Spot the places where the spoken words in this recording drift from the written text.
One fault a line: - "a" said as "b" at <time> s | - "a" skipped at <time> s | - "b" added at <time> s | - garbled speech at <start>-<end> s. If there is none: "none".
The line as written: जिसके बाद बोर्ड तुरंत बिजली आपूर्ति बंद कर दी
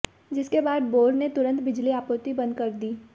- "ने" added at 1.1 s